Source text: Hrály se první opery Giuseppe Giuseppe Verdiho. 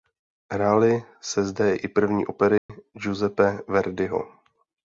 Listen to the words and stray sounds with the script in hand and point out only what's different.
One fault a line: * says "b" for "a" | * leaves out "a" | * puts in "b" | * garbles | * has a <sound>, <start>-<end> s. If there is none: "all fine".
* puts in "zde i"
* has a dropout, 2.6-2.7 s
* leaves out "Giuseppe"